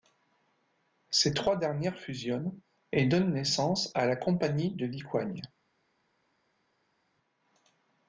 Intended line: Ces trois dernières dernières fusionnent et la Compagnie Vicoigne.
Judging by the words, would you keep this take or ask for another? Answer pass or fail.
fail